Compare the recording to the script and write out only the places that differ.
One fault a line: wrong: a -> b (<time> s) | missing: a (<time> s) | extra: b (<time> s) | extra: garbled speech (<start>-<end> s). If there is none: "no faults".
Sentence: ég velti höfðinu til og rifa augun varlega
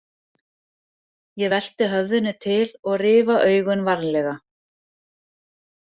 no faults